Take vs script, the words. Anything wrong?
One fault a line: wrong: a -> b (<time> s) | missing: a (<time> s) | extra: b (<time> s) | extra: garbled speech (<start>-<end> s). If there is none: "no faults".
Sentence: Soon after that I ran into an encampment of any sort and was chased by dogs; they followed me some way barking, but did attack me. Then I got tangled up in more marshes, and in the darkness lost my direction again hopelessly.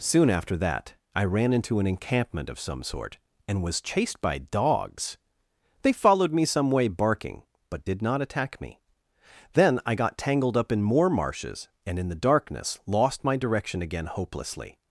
wrong: any -> some (2.6 s)
extra: not (8.0 s)